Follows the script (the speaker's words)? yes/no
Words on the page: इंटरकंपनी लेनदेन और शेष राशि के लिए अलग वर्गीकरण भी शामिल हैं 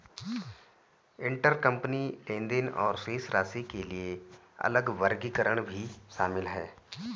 yes